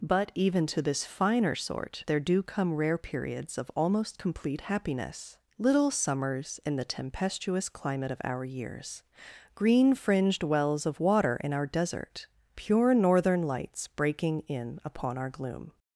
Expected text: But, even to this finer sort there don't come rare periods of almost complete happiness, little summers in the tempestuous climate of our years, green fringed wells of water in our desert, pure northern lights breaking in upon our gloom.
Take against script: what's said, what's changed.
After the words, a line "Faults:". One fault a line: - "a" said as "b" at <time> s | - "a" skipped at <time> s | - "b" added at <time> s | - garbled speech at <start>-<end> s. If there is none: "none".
But, even to this finer sort there do come rare periods of almost complete happiness, little summers in the tempestuous climate of our years, green fringed wells of water in our desert, pure northern lights breaking in upon our gloom.
Faults:
- "don't" said as "do" at 2.2 s